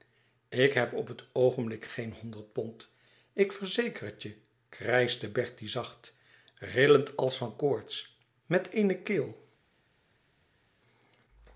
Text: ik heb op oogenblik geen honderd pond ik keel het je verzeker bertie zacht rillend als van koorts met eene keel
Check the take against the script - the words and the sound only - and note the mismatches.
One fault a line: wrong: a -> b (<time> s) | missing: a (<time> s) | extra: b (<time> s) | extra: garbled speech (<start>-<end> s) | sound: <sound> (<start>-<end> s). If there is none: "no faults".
extra: het (1.1 s)
wrong: keel -> verzeker (3.5 s)
wrong: verzeker -> krijschte (4.7 s)